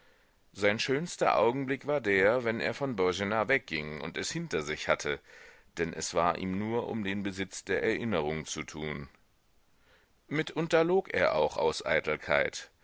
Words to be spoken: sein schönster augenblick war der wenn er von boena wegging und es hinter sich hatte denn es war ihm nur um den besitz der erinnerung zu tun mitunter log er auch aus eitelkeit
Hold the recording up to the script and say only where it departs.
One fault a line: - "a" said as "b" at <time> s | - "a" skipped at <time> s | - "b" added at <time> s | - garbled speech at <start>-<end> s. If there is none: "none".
none